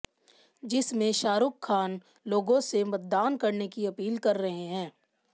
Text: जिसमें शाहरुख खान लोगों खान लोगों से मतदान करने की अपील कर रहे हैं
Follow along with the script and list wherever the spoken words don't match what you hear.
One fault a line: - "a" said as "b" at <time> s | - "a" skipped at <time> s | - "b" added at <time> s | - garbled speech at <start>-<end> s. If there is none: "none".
- "खान लोगों" skipped at 2.6 s